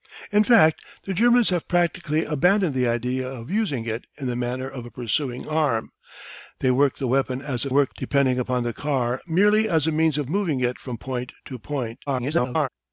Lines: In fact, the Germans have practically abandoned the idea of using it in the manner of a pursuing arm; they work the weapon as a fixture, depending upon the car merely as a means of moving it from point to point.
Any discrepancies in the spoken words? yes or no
yes